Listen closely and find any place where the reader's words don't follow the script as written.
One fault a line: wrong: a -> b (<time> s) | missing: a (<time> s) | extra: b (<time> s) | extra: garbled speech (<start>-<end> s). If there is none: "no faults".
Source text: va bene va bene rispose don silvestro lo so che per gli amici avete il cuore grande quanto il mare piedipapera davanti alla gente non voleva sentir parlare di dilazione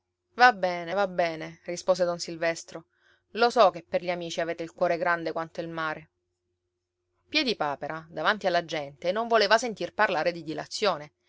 no faults